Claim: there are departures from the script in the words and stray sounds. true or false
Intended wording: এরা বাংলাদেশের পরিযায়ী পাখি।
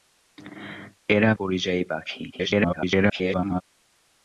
true